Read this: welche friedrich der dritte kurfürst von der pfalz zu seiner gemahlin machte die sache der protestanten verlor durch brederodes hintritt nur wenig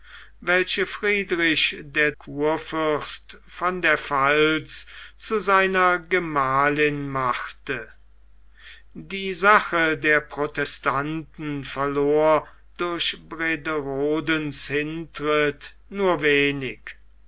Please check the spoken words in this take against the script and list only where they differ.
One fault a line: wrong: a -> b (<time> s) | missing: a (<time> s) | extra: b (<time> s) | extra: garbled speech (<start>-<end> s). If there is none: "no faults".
missing: dritte (2.1 s)